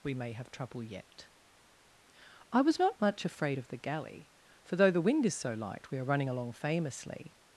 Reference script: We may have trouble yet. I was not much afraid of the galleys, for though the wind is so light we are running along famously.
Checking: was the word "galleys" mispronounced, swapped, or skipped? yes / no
yes